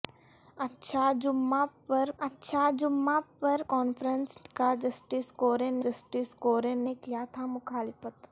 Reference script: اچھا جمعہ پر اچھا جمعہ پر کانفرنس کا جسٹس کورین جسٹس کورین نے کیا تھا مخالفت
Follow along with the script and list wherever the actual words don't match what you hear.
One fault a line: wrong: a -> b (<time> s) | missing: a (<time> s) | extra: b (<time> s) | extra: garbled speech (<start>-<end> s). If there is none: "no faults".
no faults